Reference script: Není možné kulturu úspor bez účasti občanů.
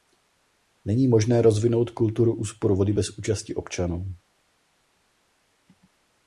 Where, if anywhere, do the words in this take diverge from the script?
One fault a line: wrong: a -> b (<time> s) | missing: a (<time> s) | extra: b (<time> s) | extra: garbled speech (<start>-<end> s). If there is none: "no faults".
extra: rozvinout (1.4 s)
extra: vody (2.8 s)